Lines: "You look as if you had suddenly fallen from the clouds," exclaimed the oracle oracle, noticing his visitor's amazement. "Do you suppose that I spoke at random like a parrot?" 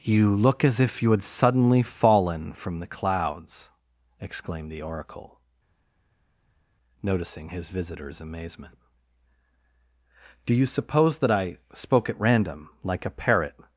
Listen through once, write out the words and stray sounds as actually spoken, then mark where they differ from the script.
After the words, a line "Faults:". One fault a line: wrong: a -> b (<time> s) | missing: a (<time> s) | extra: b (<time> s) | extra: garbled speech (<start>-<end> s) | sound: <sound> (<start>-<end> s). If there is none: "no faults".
"You look as if you had suddenly fallen from the clouds," exclaimed the oracle, noticing his visitor's amazement. "Do you suppose that I spoke at random like a parrot?"
Faults:
missing: oracle (5.4 s)